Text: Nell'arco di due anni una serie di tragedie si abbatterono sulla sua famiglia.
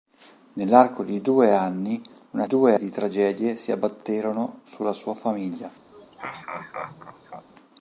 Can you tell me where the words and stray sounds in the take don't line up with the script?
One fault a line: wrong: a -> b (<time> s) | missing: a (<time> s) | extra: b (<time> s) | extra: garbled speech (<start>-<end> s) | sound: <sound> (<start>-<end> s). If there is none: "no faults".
wrong: serie -> due (2.5 s)
sound: laugh (5.9-7.5 s)